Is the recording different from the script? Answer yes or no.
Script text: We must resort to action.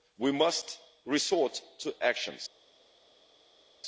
no